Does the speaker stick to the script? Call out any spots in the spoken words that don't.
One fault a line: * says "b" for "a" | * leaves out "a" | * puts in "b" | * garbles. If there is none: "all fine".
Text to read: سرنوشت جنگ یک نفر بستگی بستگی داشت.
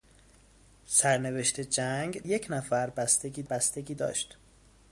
all fine